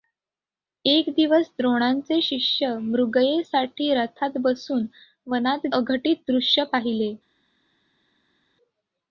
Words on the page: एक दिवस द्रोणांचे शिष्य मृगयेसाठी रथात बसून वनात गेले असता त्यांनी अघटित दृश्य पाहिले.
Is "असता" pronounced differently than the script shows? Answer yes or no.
yes